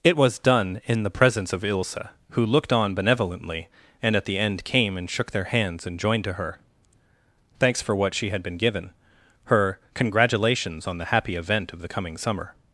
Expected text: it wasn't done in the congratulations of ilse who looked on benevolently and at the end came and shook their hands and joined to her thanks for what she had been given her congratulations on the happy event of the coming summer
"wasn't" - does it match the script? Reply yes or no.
no